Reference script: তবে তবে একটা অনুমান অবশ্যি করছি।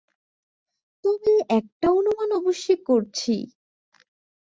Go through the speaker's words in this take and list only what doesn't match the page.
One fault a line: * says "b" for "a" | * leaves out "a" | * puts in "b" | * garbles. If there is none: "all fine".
* leaves out "তবে"